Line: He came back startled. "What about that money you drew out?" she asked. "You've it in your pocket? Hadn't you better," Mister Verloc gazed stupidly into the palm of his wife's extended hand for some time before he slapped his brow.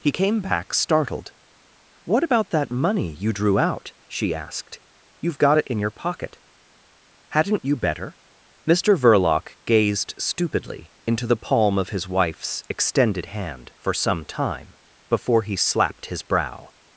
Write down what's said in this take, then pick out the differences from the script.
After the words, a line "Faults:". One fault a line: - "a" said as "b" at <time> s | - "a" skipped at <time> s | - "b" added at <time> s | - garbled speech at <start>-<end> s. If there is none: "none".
He came back startled. "What about that money you drew out?" she asked. "You've got it in your pocket? Hadn't you better," Mister Verloc gazed stupidly into the palm of his wife's extended hand for some time before he slapped his brow.
Faults:
- "got" added at 5.4 s